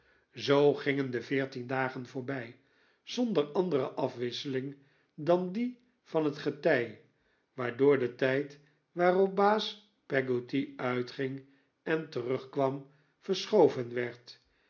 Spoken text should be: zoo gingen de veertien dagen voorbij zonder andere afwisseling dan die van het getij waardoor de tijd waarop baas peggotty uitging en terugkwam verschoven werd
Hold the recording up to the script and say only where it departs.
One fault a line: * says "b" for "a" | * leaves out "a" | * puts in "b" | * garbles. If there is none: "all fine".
all fine